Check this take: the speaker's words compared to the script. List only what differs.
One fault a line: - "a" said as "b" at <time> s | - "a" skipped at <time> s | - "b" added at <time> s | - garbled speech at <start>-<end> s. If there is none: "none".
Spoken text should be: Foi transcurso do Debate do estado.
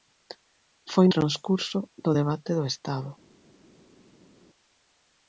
none